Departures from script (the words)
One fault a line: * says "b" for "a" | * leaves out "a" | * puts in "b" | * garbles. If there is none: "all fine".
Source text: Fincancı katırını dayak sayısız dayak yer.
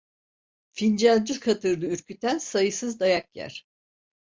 * says "ürküten" for "dayak"